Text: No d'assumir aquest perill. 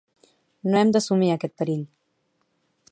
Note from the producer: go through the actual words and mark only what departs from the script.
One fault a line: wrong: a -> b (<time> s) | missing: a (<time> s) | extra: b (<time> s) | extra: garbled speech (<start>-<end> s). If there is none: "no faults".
extra: hem (0.8 s)